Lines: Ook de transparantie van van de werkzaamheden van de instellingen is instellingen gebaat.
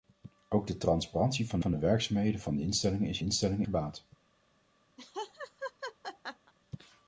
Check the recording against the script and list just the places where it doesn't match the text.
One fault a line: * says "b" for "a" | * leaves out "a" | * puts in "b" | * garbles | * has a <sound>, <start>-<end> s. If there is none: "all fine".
* has a laugh, 5.0-6.5 s